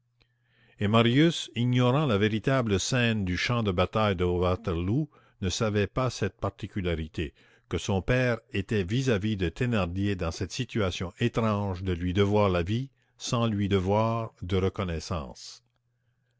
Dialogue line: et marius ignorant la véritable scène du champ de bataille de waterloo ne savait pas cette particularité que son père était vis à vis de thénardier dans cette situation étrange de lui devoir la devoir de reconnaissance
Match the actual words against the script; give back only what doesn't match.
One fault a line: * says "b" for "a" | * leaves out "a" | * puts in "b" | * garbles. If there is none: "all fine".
* puts in "vie sans lui"